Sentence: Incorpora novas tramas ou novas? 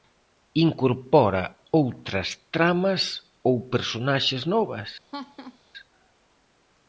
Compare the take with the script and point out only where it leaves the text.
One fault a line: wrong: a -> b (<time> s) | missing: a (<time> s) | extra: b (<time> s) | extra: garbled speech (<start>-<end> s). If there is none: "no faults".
wrong: novas -> outras (1.8 s)
extra: personaxes (3.7 s)